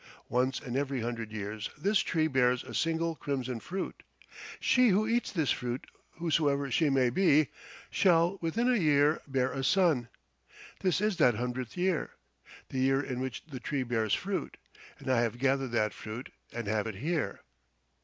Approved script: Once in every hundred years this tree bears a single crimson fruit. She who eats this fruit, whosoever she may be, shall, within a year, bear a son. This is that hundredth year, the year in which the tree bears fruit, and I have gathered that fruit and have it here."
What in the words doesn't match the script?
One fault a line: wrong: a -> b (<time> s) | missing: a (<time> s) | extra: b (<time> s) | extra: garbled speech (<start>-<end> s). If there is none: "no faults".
no faults